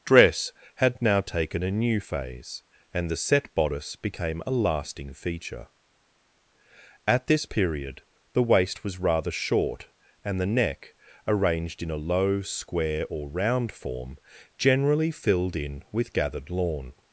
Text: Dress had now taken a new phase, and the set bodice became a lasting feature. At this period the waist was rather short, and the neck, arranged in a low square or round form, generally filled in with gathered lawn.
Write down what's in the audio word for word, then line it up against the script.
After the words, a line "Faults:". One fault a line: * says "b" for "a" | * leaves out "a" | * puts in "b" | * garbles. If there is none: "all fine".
Dress had now taken a new phase, and the set bodice became a lasting feature. At this period the waist was rather short, and the neck, arranged in a low square or round form, generally filled in with gathered lawn.
Faults:
all fine